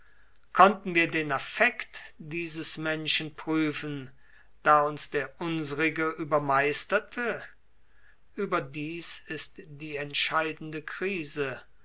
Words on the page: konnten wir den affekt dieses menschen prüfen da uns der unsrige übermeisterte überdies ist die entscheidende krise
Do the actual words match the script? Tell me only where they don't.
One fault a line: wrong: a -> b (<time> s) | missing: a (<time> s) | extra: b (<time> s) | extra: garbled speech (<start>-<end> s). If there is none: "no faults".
no faults